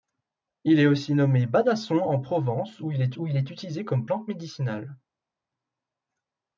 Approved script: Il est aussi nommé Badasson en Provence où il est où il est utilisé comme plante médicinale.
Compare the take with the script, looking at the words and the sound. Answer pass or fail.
pass